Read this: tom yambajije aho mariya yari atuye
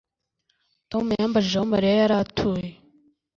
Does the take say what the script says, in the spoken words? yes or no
yes